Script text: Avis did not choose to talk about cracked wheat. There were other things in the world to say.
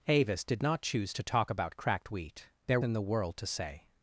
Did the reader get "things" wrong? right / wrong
wrong